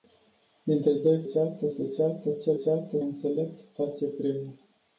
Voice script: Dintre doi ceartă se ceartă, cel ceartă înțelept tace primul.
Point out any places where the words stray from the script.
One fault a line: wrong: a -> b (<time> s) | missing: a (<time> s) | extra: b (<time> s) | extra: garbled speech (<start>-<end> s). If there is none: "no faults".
no faults